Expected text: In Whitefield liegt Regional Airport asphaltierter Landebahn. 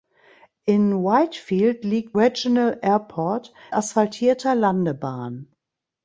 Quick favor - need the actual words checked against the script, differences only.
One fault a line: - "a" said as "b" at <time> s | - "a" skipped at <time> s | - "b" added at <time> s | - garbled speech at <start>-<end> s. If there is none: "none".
none